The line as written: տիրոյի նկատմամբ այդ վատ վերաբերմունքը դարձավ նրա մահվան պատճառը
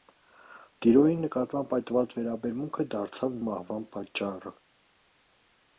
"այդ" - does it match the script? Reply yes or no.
yes